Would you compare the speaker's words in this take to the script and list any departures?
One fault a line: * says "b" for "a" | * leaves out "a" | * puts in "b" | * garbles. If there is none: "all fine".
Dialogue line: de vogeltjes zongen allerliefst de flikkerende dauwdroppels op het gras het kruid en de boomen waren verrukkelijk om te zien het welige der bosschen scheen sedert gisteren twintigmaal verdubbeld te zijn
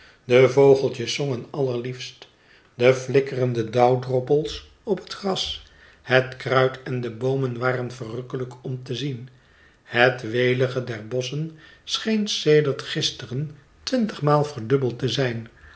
all fine